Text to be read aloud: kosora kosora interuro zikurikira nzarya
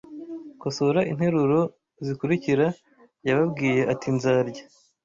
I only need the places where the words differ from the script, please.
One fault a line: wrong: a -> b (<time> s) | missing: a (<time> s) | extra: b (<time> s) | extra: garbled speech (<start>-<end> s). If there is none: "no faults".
missing: kosora (1.0 s)
extra: yababwiye ati (3.3 s)